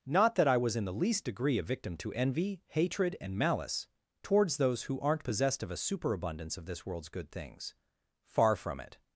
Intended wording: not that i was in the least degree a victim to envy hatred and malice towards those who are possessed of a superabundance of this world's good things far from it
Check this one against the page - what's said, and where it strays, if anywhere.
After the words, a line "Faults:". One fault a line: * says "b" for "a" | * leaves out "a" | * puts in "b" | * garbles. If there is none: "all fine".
not that i was in the least degree a victim to envy hatred and malice towards those who aren't possessed of a superabundance of this world's good things far from it
Faults:
* says "aren't" for "are"